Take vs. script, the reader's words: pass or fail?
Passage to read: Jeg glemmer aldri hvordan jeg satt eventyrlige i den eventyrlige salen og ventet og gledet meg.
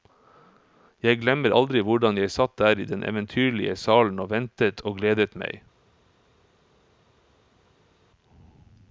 fail